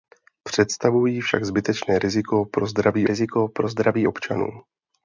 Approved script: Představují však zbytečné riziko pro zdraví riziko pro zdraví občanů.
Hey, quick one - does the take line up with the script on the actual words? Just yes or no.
yes